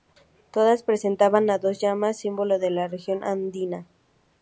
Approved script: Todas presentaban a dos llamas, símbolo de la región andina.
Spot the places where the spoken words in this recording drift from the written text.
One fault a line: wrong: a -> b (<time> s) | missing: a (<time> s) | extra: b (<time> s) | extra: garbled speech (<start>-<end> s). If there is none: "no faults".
no faults